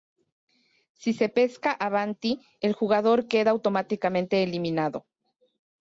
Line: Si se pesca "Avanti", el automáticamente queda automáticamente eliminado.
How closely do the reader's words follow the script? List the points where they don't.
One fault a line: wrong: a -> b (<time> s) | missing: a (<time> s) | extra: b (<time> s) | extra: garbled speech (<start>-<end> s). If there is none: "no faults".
wrong: automáticamente -> jugador (2.7 s)